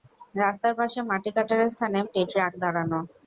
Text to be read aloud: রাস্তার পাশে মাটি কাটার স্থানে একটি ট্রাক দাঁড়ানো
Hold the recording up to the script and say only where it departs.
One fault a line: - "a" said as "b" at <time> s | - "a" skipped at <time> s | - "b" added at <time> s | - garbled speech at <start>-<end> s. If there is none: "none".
none